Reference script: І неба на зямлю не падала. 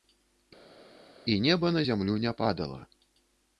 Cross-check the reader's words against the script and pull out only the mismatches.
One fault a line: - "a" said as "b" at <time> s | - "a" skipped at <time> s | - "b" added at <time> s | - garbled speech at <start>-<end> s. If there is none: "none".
none